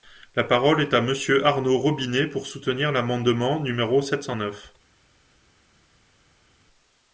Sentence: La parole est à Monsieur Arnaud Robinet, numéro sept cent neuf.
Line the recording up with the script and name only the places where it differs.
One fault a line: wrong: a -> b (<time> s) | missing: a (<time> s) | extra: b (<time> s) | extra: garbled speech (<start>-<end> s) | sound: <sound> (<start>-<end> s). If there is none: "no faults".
extra: pour soutenir l'amendement (2.2 s)